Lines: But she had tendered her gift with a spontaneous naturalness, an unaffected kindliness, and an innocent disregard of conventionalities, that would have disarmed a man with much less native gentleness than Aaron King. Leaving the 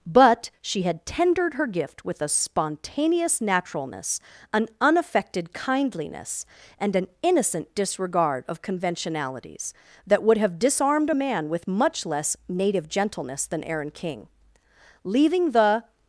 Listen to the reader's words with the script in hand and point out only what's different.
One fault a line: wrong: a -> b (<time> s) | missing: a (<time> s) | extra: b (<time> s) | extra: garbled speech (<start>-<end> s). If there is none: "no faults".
no faults